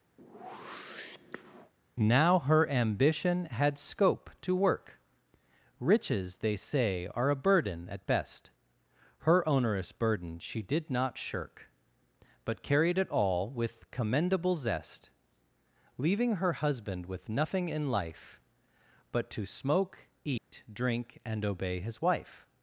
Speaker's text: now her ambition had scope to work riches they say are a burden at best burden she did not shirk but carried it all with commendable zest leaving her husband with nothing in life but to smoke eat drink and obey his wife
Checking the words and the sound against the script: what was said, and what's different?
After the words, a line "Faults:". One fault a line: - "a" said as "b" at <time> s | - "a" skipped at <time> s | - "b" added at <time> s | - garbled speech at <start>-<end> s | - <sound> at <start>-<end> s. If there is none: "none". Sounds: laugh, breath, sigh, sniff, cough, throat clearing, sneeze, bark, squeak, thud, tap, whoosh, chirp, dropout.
now her ambition had scope to work riches they say are a burden at best her onerous burden she did not shirk but carried it all with commendable zest leaving her husband with nothing in life but to smoke eat drink and obey his wife
Faults:
- whoosh at 0.2-1.7 s
- "her onerous" added at 9.2 s
- dropout at 20.4-20.5 s